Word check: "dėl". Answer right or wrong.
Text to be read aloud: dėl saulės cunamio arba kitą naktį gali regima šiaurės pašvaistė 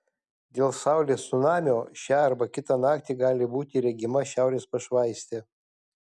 right